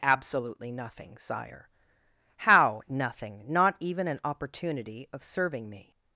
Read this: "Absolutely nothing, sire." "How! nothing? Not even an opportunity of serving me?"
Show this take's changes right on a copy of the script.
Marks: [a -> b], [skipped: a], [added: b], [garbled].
"Absolutely nothing, sire." "How! nothing? Not even an opportunity of serving me?"